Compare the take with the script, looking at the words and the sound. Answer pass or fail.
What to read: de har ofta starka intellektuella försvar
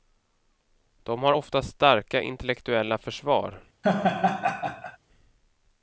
fail